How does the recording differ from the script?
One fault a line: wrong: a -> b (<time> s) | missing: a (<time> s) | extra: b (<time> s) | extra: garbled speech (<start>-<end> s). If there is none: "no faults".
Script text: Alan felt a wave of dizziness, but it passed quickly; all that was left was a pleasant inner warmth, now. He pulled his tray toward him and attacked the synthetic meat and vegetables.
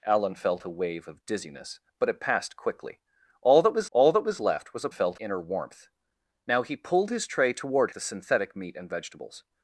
extra: all that was (3.9 s)
wrong: pleasant -> felt (4.9 s)
missing: him and attacked (7.9 s)